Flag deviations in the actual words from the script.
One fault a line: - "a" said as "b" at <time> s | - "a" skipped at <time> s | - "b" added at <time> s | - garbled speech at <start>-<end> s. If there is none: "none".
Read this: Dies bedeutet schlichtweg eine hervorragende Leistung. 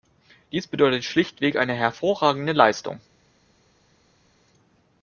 none